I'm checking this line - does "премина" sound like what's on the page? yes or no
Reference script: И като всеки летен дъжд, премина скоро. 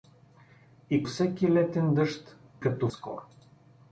no